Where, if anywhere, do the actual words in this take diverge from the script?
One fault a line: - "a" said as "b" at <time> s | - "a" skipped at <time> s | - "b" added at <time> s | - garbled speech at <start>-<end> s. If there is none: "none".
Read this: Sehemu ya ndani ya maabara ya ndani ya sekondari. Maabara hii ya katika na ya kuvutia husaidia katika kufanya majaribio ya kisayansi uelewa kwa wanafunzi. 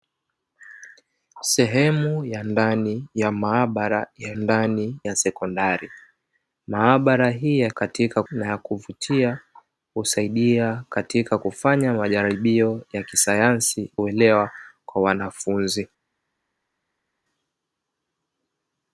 none